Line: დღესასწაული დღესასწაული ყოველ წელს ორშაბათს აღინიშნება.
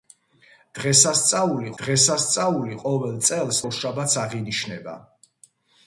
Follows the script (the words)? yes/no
yes